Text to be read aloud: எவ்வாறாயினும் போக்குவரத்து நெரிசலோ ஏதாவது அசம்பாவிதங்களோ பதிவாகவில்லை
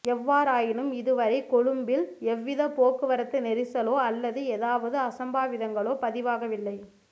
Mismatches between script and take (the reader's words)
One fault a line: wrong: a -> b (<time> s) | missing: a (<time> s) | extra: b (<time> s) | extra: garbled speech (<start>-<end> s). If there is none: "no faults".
extra: இதுவரை கொழும்பில் எவ்வித (1.0 s)
extra: அல்லது (4.1 s)